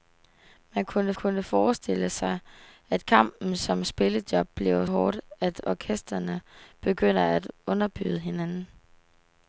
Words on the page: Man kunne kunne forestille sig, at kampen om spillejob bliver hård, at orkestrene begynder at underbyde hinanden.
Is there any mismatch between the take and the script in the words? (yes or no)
no